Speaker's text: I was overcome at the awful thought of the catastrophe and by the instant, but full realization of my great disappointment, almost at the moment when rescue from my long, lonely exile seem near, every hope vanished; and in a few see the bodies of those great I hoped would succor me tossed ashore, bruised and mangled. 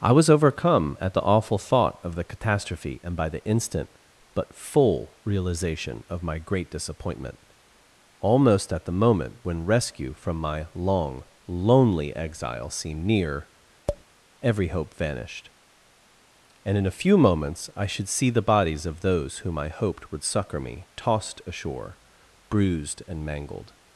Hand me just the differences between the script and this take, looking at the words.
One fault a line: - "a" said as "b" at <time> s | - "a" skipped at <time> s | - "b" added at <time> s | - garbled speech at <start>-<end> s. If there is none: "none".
- "seem" said as "seemed" at 12.7 s
- "moments I should" added at 17.2 s
- "great" said as "whom" at 19.4 s